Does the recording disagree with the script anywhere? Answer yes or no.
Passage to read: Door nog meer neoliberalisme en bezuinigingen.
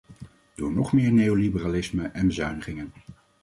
no